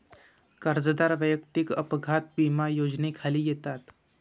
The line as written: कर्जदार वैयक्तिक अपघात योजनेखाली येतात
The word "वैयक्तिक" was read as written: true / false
true